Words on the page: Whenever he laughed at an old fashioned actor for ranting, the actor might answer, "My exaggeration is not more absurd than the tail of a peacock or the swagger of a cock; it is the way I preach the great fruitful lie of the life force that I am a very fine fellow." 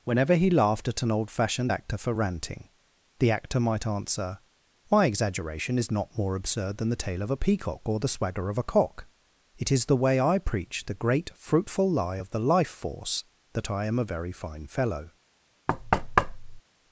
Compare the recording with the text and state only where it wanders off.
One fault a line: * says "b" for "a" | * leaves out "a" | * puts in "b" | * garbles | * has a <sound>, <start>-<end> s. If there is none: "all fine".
* has a thud, 15.7-16.6 s